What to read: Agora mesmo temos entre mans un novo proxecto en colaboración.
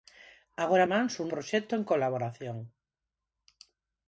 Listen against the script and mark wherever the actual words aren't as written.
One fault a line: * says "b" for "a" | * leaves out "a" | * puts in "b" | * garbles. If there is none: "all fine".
* leaves out "mesmo temos entre"
* leaves out "novo"